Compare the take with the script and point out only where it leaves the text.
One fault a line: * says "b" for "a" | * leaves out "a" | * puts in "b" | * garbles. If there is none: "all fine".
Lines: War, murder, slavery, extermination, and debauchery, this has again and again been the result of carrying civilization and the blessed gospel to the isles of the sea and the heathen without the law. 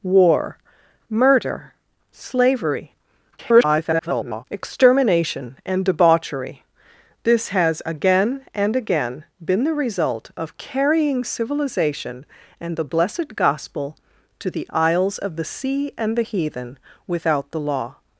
* garbles